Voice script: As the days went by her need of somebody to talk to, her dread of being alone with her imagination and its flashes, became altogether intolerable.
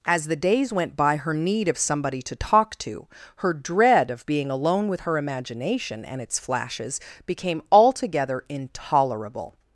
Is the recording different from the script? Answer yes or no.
no